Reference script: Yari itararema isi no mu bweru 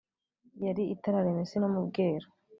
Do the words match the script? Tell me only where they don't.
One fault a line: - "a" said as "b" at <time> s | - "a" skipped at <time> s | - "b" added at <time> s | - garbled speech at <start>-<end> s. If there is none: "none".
none